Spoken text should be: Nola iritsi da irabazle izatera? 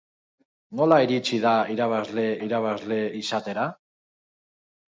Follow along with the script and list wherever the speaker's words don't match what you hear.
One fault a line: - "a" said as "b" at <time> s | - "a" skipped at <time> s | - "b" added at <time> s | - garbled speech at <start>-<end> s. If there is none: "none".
- "irabazle" added at 2.5 s